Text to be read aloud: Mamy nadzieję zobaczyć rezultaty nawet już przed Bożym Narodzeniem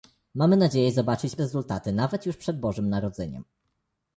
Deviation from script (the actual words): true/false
false